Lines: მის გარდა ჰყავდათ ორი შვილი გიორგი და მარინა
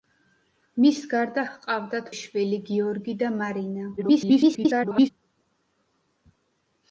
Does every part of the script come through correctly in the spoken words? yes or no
no